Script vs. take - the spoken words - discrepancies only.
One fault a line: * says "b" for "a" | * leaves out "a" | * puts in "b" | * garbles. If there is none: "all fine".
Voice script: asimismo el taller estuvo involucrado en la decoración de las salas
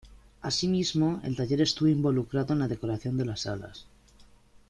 all fine